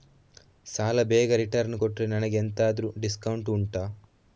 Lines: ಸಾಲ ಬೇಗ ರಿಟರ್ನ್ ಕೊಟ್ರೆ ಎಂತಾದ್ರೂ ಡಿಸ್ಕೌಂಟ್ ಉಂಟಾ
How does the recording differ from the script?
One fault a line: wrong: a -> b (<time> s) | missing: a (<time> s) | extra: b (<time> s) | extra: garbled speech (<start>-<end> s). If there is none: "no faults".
extra: ನನಗೆ (2.1 s)